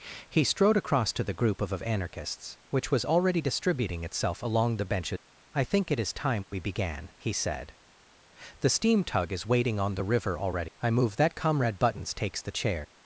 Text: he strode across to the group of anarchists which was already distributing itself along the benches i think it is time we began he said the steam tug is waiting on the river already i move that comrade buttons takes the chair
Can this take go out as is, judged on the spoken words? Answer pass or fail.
fail